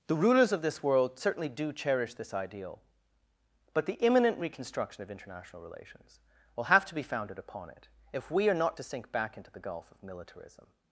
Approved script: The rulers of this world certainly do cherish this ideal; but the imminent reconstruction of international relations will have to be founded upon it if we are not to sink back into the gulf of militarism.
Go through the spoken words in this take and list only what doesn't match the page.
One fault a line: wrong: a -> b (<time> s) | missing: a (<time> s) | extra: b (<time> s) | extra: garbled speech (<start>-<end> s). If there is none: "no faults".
no faults